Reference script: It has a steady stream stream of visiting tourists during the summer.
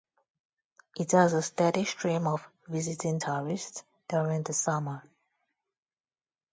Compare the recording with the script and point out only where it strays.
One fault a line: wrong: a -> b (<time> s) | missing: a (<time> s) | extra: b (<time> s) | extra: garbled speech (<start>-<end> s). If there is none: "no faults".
missing: stream (2.2 s)